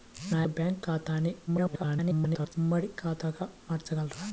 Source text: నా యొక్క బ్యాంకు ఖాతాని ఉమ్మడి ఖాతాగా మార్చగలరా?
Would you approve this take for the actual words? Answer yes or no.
no